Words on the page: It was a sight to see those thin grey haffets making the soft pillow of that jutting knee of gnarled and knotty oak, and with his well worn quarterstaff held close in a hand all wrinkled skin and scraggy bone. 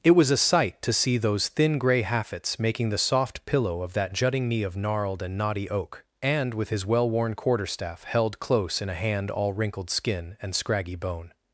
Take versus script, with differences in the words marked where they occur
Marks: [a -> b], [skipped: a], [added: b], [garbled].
It was a sight to see those thin grey haffets making the soft pillow of that jutting knee of gnarled and knotty oak, and with his well worn quarterstaff held close in a hand all wrinkled skin and scraggy bone.